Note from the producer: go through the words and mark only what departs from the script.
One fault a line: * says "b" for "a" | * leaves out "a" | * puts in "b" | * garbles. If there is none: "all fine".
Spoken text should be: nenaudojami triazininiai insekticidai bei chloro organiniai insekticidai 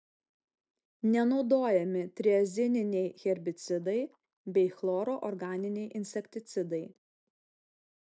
* says "herbicidai" for "insekticidai"